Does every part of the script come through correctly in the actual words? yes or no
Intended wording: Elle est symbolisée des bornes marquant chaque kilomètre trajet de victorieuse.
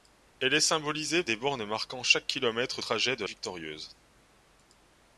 yes